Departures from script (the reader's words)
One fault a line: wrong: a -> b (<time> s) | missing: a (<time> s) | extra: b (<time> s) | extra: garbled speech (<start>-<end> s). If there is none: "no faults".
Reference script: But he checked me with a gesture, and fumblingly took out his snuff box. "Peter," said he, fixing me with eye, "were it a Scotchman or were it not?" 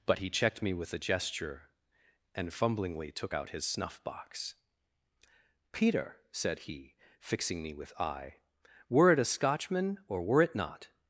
no faults